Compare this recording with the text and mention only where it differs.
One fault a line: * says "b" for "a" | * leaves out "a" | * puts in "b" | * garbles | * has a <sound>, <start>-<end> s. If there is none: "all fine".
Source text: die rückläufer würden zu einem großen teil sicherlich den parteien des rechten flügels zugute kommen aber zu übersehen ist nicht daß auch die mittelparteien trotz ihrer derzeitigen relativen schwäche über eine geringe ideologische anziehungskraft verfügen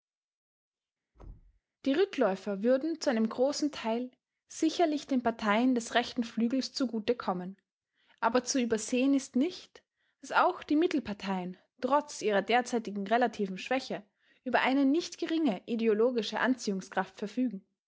* has a thud, 1.1-1.6 s
* puts in "nicht"